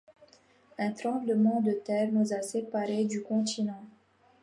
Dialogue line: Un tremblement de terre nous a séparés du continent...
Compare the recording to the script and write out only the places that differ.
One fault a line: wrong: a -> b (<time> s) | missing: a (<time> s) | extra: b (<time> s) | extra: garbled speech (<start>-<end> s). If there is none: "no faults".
no faults